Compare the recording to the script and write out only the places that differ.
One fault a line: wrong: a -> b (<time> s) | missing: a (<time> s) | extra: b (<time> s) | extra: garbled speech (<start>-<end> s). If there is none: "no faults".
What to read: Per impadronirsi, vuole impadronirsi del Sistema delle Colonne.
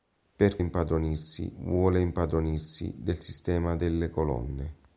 no faults